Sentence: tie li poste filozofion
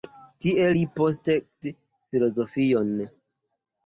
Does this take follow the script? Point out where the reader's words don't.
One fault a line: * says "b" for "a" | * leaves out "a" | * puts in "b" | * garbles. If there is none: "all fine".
all fine